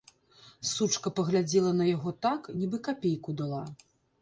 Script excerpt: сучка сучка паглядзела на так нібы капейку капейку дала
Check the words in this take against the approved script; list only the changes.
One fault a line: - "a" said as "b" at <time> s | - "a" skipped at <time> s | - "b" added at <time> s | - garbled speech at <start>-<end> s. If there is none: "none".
- "сучка" skipped at 1.1 s
- "яго" added at 1.9 s
- "капейку" skipped at 3.3 s